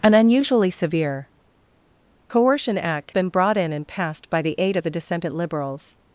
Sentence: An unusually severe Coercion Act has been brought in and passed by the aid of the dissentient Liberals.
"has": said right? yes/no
no